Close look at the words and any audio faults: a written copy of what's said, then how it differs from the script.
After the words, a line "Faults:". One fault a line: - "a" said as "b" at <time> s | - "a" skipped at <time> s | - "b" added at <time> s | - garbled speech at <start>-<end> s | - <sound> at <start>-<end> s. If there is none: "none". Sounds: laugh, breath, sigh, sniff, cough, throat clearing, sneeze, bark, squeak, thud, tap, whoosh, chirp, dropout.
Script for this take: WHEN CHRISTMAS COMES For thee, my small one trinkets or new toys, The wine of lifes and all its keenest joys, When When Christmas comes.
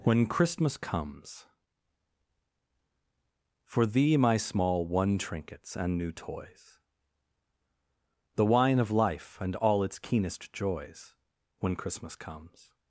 WHEN CHRISTMAS COMES For thee, my small one trinkets and new toys, The wine of life and all its keenest joys, When Christmas comes.
Faults:
- "or" said as "and" at 5.8 s
- "lifes" said as "life" at 8.9 s
- "When" skipped at 11.8 s